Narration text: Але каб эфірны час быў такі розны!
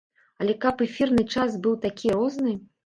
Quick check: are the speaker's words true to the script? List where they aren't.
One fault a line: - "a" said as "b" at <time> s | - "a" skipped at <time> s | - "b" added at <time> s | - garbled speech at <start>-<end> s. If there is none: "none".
none